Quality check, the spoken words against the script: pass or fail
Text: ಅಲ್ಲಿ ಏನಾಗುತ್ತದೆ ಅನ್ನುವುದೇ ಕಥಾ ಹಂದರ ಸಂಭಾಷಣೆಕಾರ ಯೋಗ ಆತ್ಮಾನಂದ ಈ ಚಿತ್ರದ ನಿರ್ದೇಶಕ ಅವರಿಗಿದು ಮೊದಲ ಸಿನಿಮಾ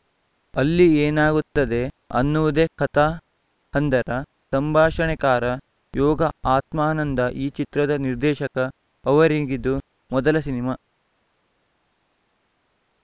pass